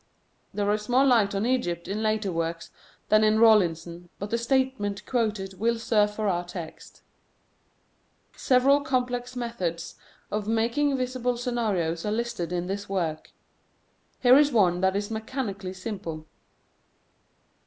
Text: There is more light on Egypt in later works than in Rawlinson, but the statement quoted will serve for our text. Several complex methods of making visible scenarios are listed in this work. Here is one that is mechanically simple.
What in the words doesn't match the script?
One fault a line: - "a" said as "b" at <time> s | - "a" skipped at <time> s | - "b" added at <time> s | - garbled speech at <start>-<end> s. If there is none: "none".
none